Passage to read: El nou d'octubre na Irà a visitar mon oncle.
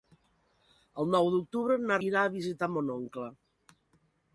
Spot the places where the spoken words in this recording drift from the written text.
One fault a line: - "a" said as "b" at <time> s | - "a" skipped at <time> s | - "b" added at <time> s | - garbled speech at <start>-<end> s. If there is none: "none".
none